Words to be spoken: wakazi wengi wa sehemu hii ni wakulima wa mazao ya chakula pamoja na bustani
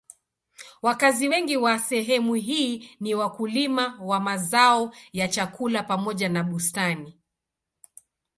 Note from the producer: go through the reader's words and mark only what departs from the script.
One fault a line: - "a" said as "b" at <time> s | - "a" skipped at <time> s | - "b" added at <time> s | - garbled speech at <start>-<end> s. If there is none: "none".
none